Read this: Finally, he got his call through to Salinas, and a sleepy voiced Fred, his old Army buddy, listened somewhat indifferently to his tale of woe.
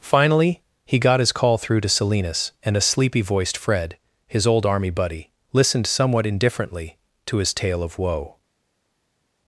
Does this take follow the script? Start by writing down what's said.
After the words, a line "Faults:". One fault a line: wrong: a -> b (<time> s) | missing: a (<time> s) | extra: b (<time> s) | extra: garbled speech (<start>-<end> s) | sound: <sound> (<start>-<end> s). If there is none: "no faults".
Finally, he got his call through to Salinas, and a sleepy voiced Fred, his old Army buddy, listened somewhat indifferently to his tale of woe.
Faults:
no faults